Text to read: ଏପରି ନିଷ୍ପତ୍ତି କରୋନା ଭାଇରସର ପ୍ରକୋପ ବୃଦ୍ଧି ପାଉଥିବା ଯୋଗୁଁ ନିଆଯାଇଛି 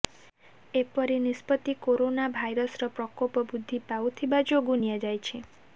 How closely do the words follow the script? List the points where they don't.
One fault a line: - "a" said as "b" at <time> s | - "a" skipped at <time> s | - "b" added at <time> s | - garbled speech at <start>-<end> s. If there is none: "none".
none